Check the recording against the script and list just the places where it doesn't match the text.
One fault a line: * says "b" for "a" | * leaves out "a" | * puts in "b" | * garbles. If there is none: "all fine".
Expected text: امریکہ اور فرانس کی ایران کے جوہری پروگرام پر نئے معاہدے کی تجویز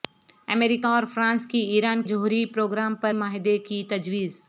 * leaves out "کے"
* leaves out "نئے"